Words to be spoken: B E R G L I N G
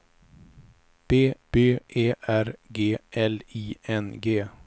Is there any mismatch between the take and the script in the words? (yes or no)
yes